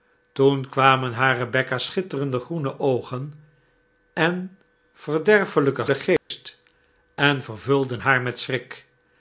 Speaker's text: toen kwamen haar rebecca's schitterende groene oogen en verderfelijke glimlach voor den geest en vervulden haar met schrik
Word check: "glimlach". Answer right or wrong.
wrong